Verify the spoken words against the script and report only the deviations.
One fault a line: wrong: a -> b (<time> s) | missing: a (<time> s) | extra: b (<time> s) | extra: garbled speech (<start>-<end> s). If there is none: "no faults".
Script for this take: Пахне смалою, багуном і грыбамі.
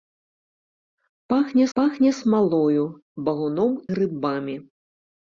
extra: пахне (1.8 s)
missing: і (3.8 s)